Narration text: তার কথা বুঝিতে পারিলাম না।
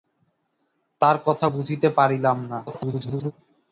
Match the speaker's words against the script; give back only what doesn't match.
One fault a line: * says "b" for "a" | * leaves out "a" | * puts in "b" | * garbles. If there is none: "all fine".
* garbles